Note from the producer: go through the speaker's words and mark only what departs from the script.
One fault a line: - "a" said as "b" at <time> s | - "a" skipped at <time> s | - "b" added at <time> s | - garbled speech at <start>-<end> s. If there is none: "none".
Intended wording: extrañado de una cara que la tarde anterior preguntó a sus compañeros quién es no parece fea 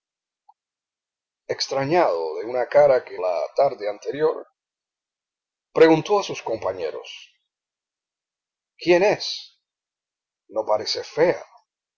none